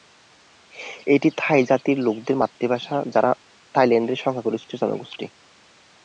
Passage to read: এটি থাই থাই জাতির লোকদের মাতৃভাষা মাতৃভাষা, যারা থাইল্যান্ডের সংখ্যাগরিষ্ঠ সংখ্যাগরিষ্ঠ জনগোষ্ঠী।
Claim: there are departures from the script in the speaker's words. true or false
true